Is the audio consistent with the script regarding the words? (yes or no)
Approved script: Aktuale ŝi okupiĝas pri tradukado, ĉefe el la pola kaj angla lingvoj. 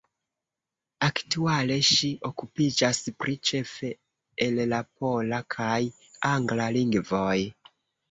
no